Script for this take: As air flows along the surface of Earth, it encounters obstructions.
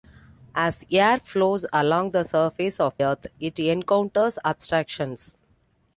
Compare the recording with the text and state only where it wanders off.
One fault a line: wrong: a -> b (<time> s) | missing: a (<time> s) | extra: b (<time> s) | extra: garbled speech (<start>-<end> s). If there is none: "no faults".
no faults